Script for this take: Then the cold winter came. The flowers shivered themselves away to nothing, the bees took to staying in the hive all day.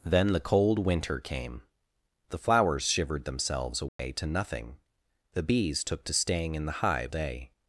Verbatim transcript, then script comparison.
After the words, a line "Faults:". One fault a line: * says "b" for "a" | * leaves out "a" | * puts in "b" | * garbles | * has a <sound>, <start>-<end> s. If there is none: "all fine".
Then the cold winter came. The flowers shivered themselves away to nothing, the bees took to staying in the hive day.
Faults:
* has a dropout, 3.9-4.0 s
* leaves out "all"